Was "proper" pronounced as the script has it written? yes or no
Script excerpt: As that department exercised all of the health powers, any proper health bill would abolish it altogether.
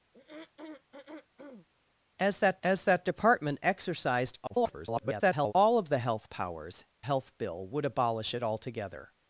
no